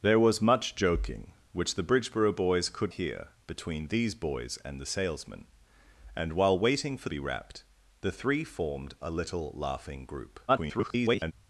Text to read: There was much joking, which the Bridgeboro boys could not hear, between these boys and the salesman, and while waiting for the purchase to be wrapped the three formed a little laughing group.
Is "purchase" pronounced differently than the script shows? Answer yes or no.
yes